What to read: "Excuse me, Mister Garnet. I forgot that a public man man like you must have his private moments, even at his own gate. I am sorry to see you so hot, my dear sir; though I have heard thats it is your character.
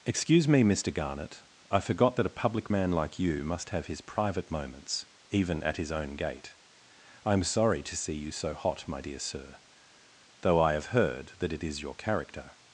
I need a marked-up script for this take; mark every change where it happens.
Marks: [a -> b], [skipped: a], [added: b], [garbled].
"Excuse me, Mister Garnet. I forgot that a public man [skipped: man] like you must have his private moments, even at his own gate. I am sorry to see you so hot, my dear sir; though I have heard [thats -> that] it is your character.